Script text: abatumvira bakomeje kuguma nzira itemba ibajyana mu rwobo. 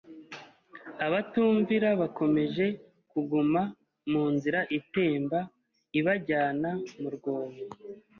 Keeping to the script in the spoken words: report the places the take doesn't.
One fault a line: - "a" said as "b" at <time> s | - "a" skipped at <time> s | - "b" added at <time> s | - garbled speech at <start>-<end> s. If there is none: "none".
- "mu" added at 4.1 s